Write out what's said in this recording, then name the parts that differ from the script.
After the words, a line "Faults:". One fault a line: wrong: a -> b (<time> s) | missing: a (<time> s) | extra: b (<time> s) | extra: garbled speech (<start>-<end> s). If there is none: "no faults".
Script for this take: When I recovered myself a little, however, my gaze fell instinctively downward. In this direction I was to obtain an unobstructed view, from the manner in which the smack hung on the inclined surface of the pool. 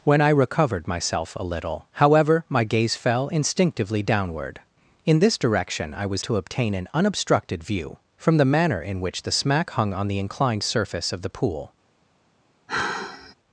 When I recovered myself a little, however, my gaze fell instinctively downward. In this direction I was to obtain an unobstructed view, from the manner in which the smack hung on the inclined surface of the pool.
Faults:
no faults